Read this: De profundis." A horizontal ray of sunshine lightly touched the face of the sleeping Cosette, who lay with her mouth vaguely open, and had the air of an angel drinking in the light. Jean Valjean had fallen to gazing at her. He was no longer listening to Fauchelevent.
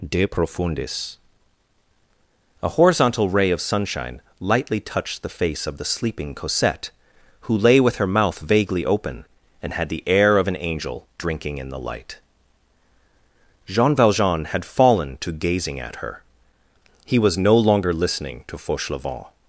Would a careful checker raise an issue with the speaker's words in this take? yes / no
no